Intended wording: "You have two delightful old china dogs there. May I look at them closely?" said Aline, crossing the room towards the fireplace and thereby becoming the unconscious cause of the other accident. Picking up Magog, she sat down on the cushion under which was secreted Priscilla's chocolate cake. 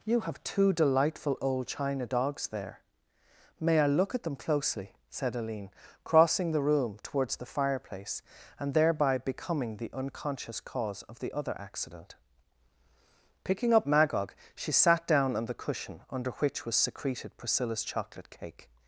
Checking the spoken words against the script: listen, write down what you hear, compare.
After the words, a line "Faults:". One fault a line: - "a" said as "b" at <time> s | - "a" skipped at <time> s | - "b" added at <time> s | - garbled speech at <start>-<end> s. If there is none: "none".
"You have two delightful old china dogs there. May I look at them closely?" said Aline, crossing the room towards the fireplace and thereby becoming the unconscious cause of the other accident. Picking up Magog, she sat down on the cushion under which was secreted Priscilla's chocolate cake.
Faults:
none